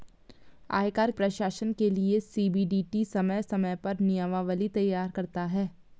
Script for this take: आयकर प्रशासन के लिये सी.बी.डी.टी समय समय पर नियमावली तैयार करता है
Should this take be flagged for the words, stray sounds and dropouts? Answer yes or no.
no